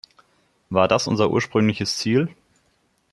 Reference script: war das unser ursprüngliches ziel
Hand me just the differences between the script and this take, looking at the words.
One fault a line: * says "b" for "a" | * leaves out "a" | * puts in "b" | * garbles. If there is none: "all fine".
all fine